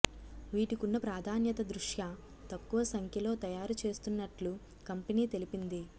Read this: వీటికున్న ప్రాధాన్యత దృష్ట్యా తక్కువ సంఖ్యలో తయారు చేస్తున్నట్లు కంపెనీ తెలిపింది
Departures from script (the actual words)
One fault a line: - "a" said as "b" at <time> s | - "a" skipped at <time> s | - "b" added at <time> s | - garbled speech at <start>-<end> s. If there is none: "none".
none